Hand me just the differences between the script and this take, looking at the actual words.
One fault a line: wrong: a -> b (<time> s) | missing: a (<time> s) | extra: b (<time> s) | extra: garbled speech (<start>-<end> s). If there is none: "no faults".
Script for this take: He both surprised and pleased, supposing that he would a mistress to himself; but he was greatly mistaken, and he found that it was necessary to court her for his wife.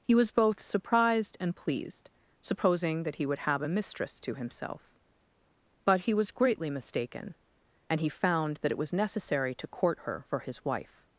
extra: was (0.1 s)
extra: have (3.4 s)